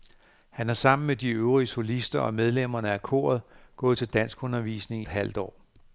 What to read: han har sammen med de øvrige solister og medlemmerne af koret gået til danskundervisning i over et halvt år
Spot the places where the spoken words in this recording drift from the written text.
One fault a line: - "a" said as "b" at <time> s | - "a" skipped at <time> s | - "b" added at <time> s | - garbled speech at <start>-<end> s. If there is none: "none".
- "i over" skipped at 5.0 s